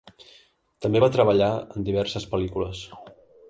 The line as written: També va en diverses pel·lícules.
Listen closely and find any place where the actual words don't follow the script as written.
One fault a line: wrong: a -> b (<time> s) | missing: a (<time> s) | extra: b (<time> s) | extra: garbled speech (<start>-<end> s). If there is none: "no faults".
extra: treballar (1.2 s)